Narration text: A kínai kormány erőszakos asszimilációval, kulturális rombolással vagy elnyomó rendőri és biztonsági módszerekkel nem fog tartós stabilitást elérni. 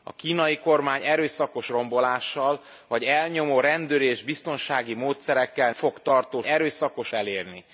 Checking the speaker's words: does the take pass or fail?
fail